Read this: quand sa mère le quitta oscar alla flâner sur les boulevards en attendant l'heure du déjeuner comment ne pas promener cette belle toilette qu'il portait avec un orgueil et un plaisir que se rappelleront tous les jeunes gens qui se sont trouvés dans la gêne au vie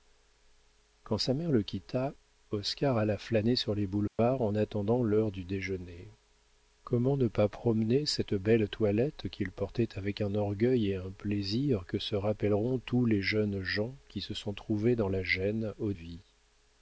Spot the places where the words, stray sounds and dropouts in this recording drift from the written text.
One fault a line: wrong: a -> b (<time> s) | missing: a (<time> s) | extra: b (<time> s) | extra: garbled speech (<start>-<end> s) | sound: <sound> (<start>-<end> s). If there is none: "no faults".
sound: dropout (4.1-4.2 s)